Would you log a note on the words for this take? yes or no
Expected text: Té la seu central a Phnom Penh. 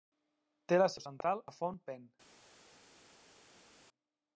no